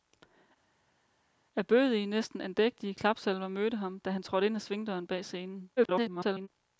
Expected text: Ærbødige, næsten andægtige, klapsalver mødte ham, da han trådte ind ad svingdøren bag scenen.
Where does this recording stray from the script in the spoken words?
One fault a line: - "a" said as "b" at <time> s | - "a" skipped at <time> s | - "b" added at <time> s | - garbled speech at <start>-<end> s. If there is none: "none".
- garbled speech at 5.8-6.5 s